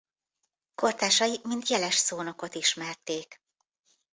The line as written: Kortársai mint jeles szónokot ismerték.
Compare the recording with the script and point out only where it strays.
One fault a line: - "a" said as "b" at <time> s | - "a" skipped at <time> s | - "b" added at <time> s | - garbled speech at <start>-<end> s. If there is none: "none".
none